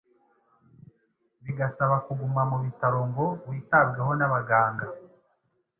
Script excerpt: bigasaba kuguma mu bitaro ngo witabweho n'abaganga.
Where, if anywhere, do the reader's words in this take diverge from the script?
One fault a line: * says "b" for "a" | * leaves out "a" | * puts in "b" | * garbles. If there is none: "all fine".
all fine